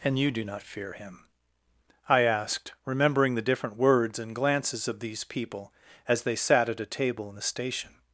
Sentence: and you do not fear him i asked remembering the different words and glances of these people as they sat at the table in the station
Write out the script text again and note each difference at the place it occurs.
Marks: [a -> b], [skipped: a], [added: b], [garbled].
and you do not fear him i asked remembering the different words and glances of these people as they sat at [the -> a] table in the station